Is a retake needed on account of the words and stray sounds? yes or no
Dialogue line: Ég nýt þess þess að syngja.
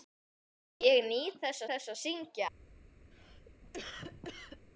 yes